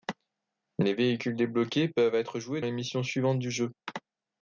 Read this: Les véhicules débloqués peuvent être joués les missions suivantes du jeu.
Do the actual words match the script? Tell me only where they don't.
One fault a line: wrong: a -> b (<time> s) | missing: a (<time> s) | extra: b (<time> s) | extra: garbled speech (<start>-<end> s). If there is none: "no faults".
no faults